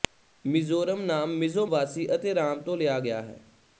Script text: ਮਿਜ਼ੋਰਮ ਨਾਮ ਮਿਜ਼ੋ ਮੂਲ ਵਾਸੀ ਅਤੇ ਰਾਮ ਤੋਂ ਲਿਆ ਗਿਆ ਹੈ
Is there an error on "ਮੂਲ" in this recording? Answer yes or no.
yes